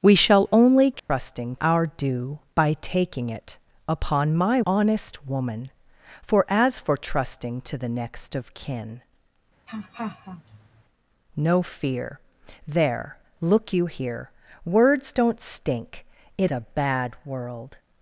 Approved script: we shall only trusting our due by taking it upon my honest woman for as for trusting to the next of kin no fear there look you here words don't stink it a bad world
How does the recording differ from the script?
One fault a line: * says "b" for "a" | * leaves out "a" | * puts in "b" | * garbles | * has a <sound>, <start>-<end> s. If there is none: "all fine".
* has a dropout, 1.0-1.1 s
* has a laugh, 9.7-10.8 s